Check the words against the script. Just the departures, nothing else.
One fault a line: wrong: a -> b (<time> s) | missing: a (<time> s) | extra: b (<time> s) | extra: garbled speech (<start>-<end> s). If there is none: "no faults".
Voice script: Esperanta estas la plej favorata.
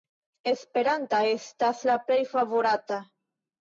no faults